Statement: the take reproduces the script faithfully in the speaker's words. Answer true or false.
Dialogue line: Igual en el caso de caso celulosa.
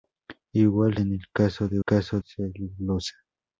true